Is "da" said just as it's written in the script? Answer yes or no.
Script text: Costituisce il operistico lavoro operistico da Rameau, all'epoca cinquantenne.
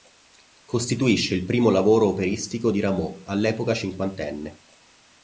no